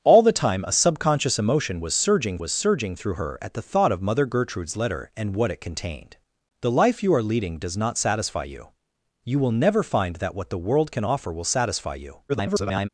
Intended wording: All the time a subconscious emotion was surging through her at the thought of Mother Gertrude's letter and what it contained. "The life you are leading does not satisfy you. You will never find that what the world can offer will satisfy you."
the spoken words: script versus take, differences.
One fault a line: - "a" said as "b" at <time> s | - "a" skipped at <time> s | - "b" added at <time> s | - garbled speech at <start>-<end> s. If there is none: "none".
- "was surging" added at 2.4 s
- garbled speech at 12.3-12.9 s